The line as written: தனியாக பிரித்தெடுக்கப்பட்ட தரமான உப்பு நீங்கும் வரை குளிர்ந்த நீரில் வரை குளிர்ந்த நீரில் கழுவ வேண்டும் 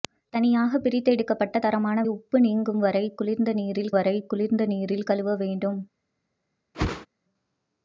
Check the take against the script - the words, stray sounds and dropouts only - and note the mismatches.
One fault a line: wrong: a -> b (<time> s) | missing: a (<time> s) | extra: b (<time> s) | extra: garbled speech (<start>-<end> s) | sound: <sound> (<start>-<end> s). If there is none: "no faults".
sound: whoosh (6.7-7.1 s)